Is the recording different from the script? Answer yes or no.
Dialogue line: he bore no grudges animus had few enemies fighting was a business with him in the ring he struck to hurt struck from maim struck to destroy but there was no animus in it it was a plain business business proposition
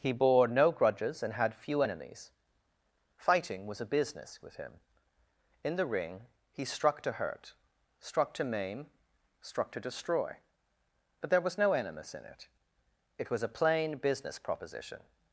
yes